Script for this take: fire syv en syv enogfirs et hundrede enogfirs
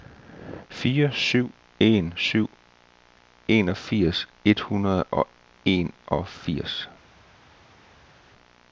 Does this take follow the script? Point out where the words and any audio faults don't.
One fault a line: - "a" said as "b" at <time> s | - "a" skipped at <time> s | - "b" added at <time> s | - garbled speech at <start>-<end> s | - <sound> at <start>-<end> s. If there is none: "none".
- "og" added at 5.0 s